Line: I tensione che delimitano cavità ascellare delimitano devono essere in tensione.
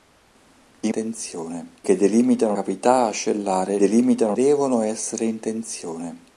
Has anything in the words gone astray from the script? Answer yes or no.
no